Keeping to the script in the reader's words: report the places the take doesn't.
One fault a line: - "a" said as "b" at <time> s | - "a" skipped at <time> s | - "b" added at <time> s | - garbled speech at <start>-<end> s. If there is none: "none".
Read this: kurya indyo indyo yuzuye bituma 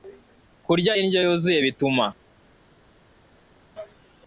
- "indyo" skipped at 1.2 s